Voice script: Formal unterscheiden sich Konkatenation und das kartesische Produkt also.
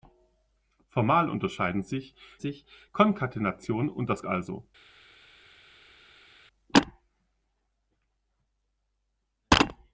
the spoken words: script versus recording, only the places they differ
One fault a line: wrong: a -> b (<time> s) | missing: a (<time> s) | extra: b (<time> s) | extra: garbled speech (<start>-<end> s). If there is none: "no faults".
extra: sich (2.4 s)
missing: kartesische Produkt (4.2 s)